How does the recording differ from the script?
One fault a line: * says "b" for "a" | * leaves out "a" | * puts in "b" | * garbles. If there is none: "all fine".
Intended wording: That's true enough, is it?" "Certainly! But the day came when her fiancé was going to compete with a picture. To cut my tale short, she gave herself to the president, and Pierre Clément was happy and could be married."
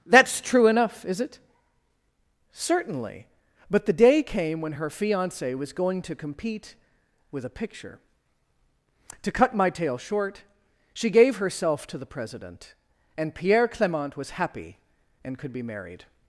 all fine